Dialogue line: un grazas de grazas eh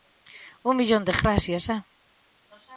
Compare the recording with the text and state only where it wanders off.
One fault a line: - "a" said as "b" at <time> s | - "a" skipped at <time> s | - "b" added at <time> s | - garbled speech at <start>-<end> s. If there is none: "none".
- "grazas" said as "millón" at 0.8 s